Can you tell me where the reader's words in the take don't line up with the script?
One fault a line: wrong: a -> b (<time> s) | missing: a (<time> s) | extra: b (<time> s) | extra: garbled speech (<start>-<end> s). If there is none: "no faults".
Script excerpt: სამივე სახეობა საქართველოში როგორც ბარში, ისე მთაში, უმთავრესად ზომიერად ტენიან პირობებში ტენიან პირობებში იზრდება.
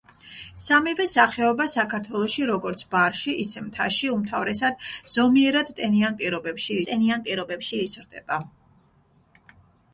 no faults